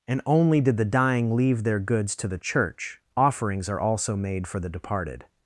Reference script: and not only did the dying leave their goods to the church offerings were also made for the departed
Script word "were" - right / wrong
wrong